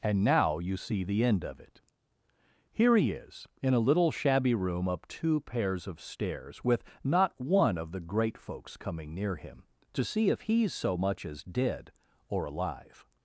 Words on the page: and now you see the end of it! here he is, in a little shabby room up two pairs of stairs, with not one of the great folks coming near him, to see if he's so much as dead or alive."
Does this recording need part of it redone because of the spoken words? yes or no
no